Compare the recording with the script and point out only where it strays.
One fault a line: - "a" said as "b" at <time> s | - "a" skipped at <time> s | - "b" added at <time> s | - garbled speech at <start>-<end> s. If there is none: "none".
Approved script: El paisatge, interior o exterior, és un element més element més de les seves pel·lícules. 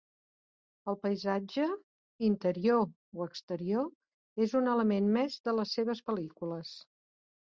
- "element més" skipped at 5.4 s